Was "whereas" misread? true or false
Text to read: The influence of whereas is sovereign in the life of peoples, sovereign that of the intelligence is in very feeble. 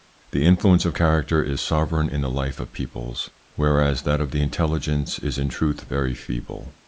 true